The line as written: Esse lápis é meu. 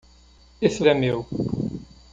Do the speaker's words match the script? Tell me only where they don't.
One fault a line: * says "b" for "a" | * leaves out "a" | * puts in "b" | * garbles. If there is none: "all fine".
* leaves out "lápis"